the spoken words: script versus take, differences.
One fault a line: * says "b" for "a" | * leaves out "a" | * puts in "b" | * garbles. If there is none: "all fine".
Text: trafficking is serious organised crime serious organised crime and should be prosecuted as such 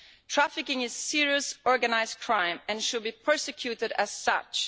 * leaves out "serious organised crime"